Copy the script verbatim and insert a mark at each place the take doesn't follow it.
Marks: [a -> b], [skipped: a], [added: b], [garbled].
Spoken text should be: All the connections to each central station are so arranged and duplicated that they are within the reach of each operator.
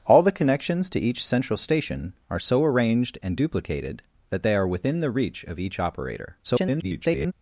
All the connections to each central station are so arranged and duplicated that they are within the reach of each operator. [garbled]